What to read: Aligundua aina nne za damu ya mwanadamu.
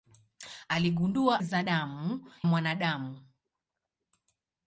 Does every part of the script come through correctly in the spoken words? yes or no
no